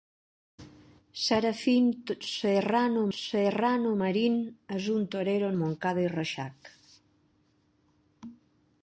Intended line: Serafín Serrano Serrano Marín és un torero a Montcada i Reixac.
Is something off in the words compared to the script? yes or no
no